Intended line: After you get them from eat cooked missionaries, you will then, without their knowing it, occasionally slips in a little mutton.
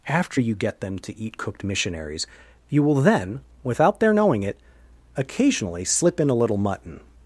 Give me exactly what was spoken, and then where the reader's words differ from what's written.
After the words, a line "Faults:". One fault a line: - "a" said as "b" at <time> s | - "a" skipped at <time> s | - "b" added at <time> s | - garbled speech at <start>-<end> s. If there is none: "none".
After you get them to eat cooked missionaries, you will then, without their knowing it, occasionally slip in a little mutton.
Faults:
- "from" said as "to" at 1.0 s
- "slips" said as "slip" at 5.8 s